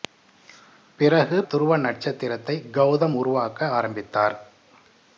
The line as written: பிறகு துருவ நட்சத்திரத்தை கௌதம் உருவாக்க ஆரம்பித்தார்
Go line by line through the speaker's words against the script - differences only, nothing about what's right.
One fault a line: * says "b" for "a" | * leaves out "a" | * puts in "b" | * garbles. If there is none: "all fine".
all fine